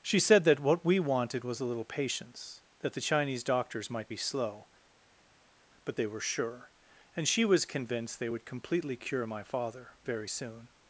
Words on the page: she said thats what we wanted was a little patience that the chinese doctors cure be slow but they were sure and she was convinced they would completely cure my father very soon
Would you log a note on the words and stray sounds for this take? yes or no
yes